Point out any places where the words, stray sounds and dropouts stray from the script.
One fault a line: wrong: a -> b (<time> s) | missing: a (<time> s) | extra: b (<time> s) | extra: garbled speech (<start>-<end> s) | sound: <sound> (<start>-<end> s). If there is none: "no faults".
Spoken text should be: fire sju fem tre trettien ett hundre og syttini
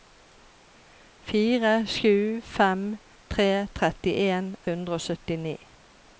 missing: ett (4.5 s)